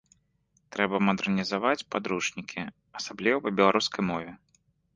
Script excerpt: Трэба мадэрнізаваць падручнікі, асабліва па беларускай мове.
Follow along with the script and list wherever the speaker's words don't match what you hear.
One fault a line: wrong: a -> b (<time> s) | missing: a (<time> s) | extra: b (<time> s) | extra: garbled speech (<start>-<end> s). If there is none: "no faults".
no faults